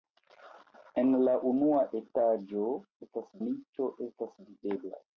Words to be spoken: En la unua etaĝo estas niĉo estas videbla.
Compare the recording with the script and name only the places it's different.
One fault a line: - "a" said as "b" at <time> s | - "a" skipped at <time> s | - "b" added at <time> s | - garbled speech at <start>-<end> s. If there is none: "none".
none